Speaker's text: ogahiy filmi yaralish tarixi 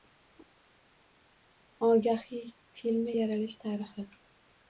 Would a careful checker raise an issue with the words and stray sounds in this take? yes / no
no